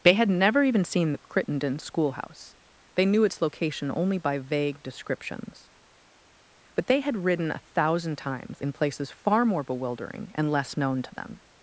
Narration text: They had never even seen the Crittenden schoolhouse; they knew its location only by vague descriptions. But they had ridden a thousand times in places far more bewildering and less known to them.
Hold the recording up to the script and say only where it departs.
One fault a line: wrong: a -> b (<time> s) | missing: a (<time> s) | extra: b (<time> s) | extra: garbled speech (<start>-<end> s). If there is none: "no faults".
no faults